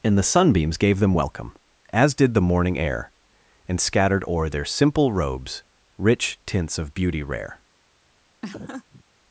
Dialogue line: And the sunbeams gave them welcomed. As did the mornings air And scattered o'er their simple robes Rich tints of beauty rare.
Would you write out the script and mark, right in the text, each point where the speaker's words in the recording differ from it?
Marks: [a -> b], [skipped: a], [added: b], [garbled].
And the sunbeams gave them [welcomed. -> welcome] As did the [mornings -> morning] air And scattered o'er their simple robes Rich tints of beauty rare.